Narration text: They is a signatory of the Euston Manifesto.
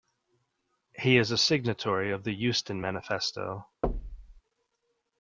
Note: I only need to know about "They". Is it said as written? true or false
false